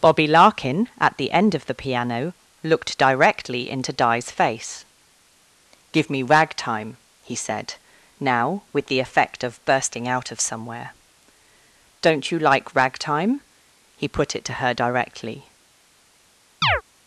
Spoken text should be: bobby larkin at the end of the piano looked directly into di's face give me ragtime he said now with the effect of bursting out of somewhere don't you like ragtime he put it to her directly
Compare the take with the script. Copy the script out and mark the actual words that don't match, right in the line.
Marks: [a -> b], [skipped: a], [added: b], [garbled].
bobby larkin at the end of the piano looked directly into di's face give me ragtime he said now with the effect of bursting out of somewhere don't you like ragtime he put it to her directly